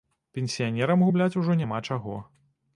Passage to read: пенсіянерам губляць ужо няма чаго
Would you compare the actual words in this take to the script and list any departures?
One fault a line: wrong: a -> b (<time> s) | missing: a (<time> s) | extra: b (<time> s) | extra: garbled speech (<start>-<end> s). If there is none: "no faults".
no faults